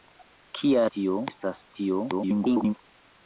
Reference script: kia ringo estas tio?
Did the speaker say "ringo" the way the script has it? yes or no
no